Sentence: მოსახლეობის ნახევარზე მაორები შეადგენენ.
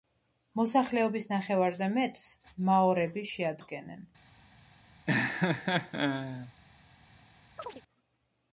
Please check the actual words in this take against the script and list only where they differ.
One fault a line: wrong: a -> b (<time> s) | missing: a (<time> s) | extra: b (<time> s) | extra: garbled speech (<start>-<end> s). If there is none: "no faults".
extra: მეტს (2.0 s)